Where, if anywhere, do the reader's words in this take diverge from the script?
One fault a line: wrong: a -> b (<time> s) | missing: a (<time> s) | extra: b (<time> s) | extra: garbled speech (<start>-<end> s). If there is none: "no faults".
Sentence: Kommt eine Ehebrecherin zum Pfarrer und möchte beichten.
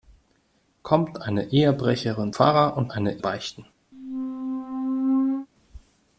missing: zum (2.3 s)
wrong: möchte -> eine (2.9 s)